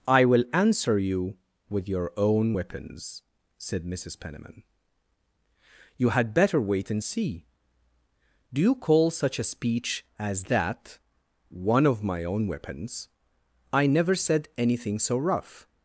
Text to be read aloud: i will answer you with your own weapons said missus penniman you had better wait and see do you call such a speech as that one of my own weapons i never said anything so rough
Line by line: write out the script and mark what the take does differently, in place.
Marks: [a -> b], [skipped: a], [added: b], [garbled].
i will answer you with your own weapons said missus penniman you had better wait and see do you call such a speech as that one of my own weapons i never said anything so rough